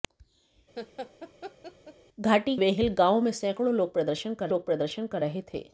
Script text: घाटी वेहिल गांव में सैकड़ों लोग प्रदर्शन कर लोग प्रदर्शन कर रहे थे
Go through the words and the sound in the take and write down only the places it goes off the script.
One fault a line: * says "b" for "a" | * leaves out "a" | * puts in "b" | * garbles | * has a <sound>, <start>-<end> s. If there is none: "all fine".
* has a laugh, 0.8-1.9 s